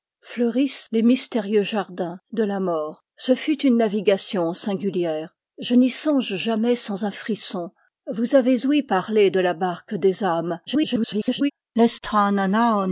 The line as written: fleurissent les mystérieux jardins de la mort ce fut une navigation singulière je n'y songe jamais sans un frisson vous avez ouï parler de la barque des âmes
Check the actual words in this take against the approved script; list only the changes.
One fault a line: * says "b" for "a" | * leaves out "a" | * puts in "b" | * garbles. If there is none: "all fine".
* garbles